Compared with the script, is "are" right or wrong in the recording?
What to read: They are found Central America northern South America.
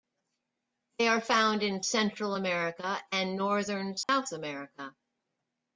right